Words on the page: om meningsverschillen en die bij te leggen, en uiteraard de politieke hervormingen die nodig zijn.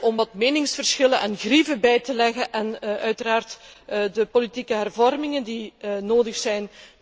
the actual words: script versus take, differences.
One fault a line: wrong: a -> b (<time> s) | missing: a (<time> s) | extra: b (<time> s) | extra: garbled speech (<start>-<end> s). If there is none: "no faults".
extra: wat (0.1 s)
wrong: die -> grieven (1.4 s)